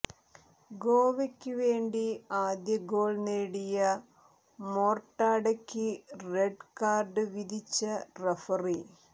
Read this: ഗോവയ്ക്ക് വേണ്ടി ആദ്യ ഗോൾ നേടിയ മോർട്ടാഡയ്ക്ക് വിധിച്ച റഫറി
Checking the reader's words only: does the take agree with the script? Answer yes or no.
no